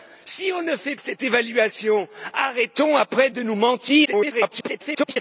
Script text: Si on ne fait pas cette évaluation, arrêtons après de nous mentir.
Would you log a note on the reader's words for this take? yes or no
yes